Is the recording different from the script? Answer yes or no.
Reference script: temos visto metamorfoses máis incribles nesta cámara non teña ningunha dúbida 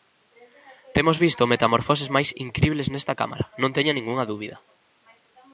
no